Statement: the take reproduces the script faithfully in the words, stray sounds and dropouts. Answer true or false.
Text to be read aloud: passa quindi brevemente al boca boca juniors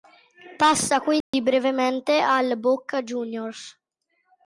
false